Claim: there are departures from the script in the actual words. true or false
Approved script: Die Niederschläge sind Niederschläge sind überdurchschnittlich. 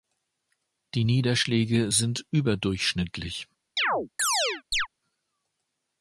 true